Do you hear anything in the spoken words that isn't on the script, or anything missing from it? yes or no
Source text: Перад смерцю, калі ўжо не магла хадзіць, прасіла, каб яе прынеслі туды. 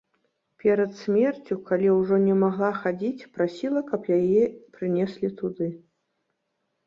no